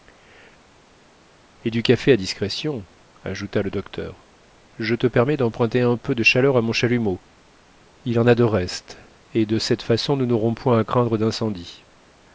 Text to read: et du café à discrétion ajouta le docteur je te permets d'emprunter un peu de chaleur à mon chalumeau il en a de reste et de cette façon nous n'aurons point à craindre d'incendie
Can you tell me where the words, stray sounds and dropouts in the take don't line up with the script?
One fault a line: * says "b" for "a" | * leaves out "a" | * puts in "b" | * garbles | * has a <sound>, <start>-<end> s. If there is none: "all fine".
all fine